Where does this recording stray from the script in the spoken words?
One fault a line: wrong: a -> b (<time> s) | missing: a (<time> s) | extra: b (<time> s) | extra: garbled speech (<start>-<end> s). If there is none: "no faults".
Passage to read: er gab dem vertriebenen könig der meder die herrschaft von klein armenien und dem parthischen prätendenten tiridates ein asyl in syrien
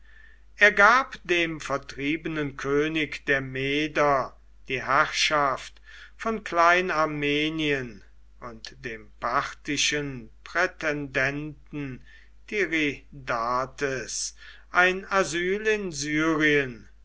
no faults